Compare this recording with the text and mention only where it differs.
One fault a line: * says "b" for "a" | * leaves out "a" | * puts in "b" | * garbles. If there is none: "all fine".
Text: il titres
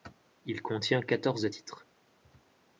* puts in "contient quatorze"